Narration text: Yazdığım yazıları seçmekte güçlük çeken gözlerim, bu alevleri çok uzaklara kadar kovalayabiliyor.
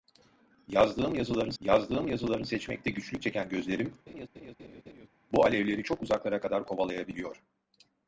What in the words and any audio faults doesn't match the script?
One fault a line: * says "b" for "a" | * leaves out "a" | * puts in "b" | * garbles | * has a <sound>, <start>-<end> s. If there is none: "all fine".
* puts in "yazdığım yazıları"
* has a laugh, 4.1-5.1 s